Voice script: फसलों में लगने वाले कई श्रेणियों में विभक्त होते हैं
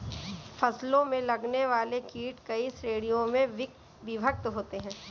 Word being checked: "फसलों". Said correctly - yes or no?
yes